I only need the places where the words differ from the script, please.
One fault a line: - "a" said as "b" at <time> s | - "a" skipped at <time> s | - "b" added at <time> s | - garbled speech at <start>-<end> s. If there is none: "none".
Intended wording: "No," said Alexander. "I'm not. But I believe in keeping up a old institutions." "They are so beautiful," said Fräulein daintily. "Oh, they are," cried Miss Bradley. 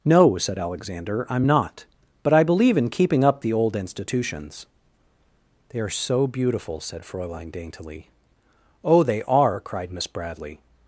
- "a" said as "the" at 3.4 s